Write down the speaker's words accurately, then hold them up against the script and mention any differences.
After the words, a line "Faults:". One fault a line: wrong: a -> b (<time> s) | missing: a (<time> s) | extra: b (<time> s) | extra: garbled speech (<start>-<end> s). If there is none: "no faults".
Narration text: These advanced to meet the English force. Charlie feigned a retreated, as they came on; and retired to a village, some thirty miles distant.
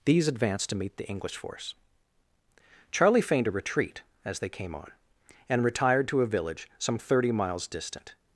These advanced to meet the English force. Charlie feigned a retreat, as they came on; and retired to a village, some thirty miles distant.
Faults:
wrong: retreated -> retreat (3.5 s)